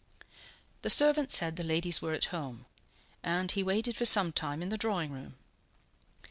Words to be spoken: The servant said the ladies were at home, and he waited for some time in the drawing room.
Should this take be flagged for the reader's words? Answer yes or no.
no